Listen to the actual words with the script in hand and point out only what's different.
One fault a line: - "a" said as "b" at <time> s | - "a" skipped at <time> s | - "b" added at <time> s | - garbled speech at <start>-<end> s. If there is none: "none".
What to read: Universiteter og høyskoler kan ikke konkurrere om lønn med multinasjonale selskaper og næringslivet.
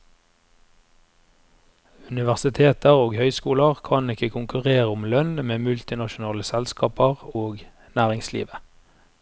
none